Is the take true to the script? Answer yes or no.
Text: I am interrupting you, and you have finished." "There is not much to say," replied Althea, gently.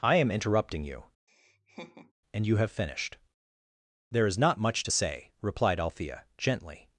yes